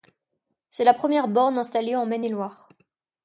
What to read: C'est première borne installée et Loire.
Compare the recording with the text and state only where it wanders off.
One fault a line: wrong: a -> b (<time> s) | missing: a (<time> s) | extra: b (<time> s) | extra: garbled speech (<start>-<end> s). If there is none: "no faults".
extra: la (0.8 s)
extra: en Maine (1.9 s)